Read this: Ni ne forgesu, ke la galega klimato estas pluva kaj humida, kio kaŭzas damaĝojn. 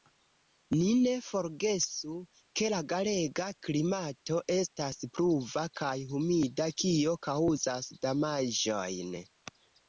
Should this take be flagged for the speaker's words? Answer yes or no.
no